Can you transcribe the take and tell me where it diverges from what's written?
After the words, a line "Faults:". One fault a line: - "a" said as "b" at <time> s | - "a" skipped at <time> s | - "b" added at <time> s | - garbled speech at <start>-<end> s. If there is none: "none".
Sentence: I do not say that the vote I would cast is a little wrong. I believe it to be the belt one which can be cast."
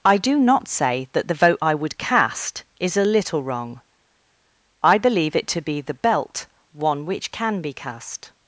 I do not say that the vote I would cast is a little wrong. I believe it to be the belt one which can be cast."
Faults:
none